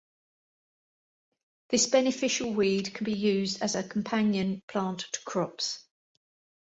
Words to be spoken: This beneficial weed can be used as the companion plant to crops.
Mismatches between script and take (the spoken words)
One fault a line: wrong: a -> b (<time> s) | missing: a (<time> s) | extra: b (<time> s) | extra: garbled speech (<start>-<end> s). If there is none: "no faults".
wrong: the -> a (3.7 s)